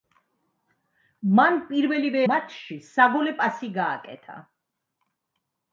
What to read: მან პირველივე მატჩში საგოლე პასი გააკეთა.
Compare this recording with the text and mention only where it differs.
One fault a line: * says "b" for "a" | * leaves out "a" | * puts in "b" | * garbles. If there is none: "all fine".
all fine